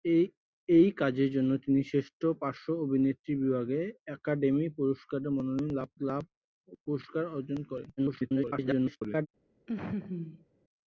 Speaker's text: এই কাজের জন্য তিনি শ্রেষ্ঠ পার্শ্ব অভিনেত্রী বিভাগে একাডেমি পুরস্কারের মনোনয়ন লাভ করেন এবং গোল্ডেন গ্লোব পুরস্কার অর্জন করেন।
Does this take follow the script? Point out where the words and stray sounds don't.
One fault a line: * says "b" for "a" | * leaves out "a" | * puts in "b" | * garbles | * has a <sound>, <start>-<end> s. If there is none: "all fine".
* leaves out "করেন এবং গোল্ডেন"
* garbles
* has a laugh, 9.7-10.5 s